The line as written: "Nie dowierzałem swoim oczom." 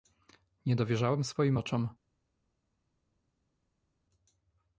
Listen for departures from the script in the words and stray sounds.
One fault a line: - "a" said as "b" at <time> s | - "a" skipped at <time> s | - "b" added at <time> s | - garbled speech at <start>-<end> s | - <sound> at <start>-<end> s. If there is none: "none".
none